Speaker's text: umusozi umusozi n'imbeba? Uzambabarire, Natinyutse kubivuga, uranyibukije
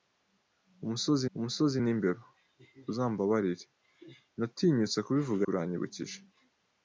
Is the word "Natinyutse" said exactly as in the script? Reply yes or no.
yes